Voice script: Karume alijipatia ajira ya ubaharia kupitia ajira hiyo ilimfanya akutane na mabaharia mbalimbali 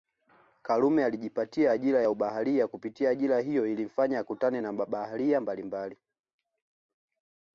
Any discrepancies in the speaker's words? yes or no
no